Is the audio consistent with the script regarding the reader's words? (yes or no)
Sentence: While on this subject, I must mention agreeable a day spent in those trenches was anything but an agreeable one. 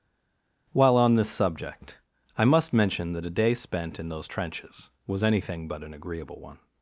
no